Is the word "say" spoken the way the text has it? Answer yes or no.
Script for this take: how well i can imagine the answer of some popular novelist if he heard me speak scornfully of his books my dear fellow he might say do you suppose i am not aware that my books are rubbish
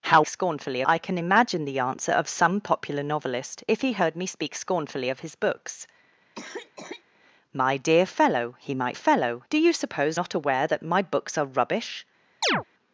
no